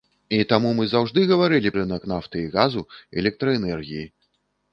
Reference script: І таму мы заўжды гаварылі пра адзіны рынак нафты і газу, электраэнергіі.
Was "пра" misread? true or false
true